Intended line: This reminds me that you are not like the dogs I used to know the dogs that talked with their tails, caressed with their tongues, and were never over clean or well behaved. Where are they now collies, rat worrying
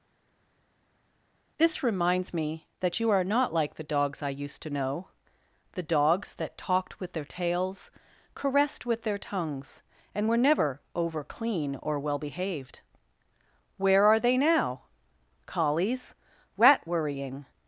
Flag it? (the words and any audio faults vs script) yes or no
no